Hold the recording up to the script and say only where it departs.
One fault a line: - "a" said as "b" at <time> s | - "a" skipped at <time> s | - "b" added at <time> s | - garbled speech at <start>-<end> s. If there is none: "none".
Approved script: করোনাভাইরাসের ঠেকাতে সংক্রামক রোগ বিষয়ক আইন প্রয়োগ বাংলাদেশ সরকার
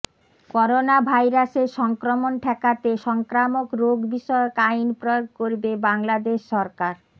- "সংক্রমণ" added at 1.8 s
- "করবে" added at 5.4 s